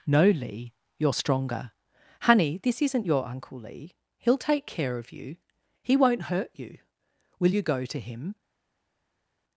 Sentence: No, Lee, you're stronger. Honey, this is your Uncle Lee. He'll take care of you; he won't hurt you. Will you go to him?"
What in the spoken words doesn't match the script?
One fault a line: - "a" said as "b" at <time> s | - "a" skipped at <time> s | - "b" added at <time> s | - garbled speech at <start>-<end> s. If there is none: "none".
- "is" said as "isn't" at 2.8 s